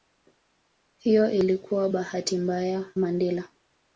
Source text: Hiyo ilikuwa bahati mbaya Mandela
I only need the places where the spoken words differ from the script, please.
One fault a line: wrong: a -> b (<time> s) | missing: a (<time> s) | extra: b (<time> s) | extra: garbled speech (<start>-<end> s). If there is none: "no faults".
no faults